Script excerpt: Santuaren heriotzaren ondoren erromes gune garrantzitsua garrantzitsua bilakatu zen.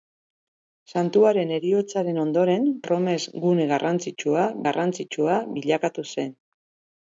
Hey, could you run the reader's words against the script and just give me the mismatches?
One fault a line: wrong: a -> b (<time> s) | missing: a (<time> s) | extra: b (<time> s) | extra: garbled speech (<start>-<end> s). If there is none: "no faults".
no faults